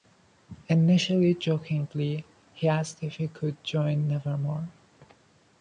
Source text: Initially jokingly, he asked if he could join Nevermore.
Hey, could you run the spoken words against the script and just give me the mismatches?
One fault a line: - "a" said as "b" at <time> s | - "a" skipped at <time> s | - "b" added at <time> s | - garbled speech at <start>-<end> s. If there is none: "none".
none